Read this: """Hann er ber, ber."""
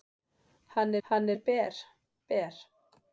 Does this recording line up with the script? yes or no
no